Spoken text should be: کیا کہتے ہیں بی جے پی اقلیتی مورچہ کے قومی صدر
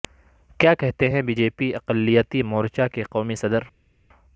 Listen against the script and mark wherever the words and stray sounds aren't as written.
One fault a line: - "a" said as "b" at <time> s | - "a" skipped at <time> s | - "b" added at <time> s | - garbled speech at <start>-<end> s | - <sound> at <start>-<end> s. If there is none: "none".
none